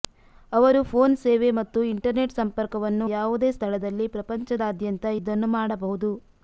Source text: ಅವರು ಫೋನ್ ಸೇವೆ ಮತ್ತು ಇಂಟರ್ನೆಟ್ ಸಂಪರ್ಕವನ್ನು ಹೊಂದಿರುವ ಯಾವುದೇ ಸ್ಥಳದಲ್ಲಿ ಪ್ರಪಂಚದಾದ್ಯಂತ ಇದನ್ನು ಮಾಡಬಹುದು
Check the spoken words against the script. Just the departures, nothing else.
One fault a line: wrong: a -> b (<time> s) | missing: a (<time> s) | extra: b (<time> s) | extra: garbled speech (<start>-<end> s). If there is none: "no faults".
missing: ಹೊಂದಿರುವ (3.1 s)